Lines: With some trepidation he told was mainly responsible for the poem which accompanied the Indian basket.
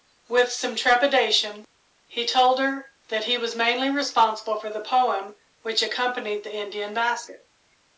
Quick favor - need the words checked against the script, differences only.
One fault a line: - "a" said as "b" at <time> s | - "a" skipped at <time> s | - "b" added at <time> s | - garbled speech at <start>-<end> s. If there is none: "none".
- "her that he" added at 2.6 s